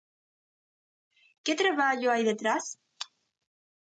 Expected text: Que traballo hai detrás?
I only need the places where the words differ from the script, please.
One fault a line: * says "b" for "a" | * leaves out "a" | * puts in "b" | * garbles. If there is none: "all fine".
all fine